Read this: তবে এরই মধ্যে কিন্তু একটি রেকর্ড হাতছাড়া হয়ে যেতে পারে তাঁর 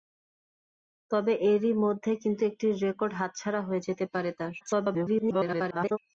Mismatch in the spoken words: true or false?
true